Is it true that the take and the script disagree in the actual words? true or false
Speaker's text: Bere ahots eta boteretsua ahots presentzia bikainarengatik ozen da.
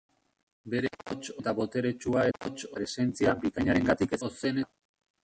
false